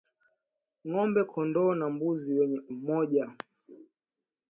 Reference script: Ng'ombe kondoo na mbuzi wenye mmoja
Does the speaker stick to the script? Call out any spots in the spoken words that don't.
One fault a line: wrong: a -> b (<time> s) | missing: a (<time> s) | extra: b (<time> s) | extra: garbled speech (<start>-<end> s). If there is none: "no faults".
no faults